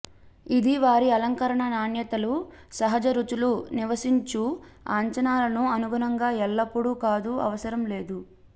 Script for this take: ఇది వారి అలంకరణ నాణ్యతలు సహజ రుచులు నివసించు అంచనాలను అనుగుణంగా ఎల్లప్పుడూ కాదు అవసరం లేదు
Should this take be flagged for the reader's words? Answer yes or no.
no